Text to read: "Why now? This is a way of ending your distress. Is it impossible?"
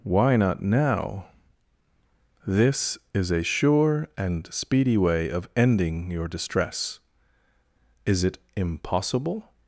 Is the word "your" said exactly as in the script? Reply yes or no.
yes